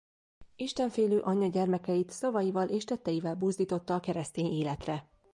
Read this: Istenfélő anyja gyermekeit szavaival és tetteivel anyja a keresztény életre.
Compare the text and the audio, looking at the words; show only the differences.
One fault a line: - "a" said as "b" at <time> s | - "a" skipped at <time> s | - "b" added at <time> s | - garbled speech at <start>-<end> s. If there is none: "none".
- "anyja" said as "buzdította" at 3.4 s